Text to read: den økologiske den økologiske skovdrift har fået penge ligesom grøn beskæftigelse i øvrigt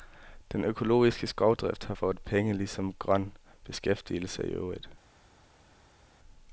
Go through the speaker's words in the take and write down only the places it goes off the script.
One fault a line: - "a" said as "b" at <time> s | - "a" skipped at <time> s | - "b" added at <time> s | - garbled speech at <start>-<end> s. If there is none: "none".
- "den økologiske" skipped at 1.3 s